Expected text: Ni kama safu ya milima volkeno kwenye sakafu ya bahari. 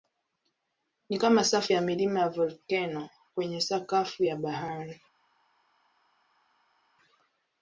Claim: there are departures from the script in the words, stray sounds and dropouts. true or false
true